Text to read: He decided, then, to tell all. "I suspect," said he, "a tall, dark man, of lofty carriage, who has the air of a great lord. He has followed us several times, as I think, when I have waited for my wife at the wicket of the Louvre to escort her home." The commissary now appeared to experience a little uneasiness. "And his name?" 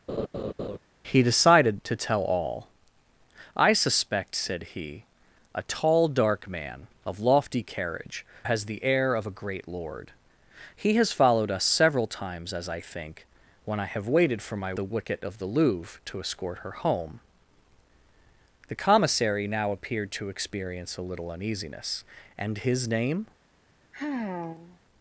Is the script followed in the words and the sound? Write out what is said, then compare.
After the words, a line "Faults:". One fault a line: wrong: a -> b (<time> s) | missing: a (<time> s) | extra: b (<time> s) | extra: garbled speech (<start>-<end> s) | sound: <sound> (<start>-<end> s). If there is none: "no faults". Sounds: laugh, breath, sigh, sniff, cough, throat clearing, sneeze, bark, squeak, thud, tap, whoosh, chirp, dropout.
He decided, to tell all. "I suspect," said he, "a tall, dark man, of lofty carriage, has the air of a great lord. He has followed us several times, as I think, when I have waited for my the wicket of the Louvre to escort her home." The commissary now appeared to experience a little uneasiness. "And his name?"
Faults:
sound: laugh (0.1-0.8 s)
missing: then (1.8 s)
missing: who (8.3 s)
missing: wife at (14.7 s)
sound: sigh (23.9-24.8 s)